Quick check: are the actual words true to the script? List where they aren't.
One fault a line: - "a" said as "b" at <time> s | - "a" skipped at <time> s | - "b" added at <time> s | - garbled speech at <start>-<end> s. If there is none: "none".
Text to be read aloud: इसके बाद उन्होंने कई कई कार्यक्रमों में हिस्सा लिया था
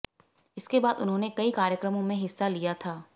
- "कई" skipped at 1.5 s